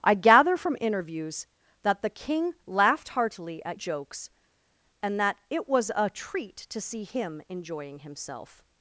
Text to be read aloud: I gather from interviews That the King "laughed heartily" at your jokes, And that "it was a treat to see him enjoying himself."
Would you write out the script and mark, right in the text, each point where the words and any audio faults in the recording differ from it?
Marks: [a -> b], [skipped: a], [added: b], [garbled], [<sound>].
I gather from interviews That the King "laughed heartily" at [skipped: your] jokes, And that "it was a treat to see him enjoying himself."